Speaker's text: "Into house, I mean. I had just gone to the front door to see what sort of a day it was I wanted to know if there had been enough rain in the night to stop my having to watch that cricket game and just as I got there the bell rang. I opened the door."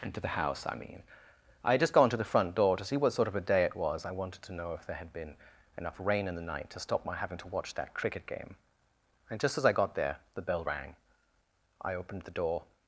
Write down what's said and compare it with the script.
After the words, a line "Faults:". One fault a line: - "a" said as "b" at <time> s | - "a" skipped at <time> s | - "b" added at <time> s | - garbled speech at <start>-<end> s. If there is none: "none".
"Into the house, I mean. I had just gone to the front door to see what sort of a day it was I wanted to know if there had been enough rain in the night to stop my having to watch that cricket game and just as I got there the bell rang. I opened the door."
Faults:
- "the" added at 0.2 s